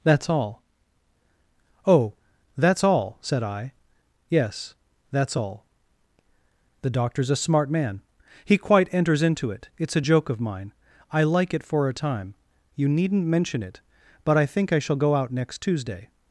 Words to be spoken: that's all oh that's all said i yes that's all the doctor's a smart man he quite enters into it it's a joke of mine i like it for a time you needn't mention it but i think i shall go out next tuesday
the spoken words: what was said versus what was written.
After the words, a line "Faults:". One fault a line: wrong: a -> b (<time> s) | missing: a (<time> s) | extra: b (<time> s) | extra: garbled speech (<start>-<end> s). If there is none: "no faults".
that's all oh that's all said i yes that's all the doctor's a smart man he quite enters into it it's a joke of mine i like it for a time you needn't mention it but i think i shall go out next tuesday
Faults:
no faults